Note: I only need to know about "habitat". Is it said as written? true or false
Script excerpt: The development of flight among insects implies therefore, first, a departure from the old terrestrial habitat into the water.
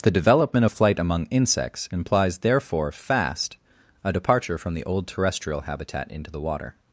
true